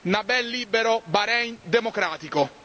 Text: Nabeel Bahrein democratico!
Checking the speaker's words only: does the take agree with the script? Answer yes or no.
no